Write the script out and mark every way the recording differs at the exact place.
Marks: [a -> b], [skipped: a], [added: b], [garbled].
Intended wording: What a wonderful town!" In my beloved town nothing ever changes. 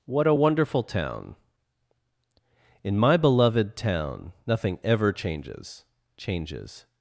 What a wonderful town!" In my beloved town nothing ever changes. [added: changes]